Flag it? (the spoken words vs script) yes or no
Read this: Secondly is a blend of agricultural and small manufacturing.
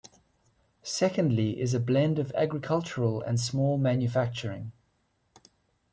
no